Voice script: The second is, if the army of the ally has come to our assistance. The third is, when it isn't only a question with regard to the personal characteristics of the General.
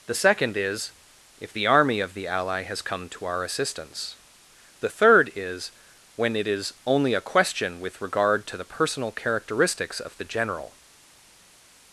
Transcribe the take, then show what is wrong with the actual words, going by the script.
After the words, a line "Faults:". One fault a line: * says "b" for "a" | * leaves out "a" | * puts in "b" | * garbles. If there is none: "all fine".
The second is, if the army of the ally has come to our assistance. The third is, when it is only a question with regard to the personal characteristics of the General.
Faults:
* says "is" for "isn't"